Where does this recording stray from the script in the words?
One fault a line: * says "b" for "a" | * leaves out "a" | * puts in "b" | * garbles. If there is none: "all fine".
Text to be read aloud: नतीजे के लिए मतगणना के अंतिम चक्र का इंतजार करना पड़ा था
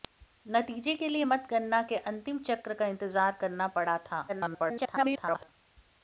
* garbles